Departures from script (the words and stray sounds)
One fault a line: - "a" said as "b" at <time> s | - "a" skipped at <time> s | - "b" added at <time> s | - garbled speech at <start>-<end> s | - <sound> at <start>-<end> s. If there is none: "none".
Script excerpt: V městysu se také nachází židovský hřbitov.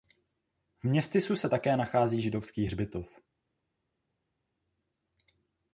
none